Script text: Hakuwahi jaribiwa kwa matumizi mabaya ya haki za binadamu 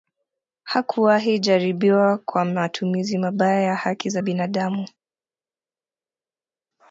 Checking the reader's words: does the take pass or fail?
pass